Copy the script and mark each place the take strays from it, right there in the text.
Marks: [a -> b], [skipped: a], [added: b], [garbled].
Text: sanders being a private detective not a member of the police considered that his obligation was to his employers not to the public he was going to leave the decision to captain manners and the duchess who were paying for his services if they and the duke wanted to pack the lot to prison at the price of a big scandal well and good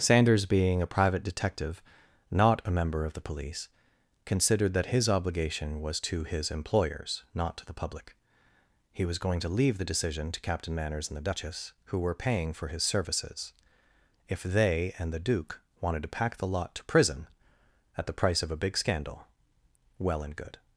sanders being a private detective not a member of the police considered that his obligation was to his employers not to the public he was going to leave the decision to captain manners and the duchess who were paying for his services if they and the duke wanted to pack the lot to prison at the price of a big scandal well and good